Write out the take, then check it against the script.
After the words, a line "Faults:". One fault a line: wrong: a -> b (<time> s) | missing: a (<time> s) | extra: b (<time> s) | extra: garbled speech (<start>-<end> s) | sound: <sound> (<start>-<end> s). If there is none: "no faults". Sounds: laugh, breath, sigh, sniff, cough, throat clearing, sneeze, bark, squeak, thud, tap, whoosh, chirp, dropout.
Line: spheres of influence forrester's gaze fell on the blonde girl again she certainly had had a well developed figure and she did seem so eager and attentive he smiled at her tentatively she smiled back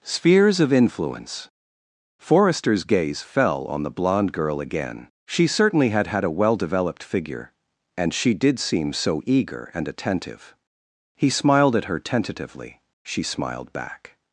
spheres of influence forrester's gaze fell on the blonde girl again she certainly had had a well developed figure and she did seem so eager and attentive he smiled at her tentatively she smiled back
Faults:
no faults